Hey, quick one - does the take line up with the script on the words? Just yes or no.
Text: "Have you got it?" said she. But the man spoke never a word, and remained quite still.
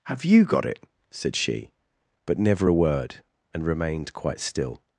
no